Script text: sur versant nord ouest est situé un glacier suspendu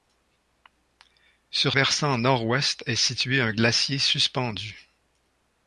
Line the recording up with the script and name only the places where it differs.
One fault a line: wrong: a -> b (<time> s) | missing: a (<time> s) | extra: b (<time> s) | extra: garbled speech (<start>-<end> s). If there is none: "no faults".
no faults